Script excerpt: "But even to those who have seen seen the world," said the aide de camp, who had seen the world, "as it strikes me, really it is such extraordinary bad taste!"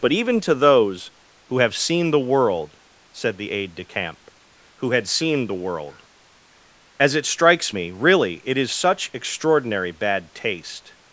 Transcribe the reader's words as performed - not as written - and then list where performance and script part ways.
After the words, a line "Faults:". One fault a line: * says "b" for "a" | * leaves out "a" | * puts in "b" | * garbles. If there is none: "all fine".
"But even to those who have seen the world," said the aide de camp, who had seen the world, "as it strikes me, really it is such extraordinary bad taste!"
Faults:
* leaves out "seen"